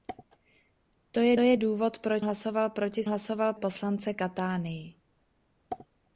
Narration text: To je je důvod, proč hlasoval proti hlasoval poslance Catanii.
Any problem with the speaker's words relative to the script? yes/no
no